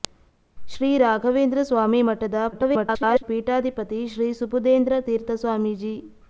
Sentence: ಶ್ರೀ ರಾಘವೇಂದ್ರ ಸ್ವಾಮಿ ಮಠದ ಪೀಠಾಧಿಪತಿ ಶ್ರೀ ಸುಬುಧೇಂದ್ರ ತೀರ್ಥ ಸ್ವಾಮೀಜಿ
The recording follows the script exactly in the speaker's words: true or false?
false